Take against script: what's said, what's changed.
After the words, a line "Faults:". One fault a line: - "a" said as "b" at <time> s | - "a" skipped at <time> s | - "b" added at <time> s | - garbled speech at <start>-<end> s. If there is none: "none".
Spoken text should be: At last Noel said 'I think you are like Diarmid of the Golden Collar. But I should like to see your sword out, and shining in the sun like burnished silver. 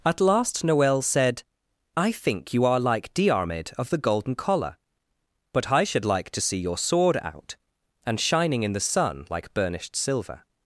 At last Noel said 'I think you are like Diarmid of the Golden Collar. But I should like to see your sword out, and shining in the sun like burnished silver.
Faults:
none